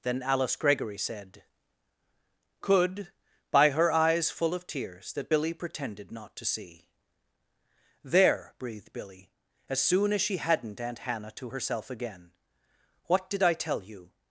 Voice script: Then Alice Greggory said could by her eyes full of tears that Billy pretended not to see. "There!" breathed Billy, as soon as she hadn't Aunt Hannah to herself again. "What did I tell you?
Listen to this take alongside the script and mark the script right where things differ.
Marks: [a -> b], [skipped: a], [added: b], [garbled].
Then Alice Greggory said could by her eyes full of tears that Billy pretended not to see. "There!" breathed Billy, as soon as she hadn't Aunt Hannah to herself again. "What did I tell you?